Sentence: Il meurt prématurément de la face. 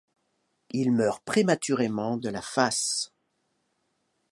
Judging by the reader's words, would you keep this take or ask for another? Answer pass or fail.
pass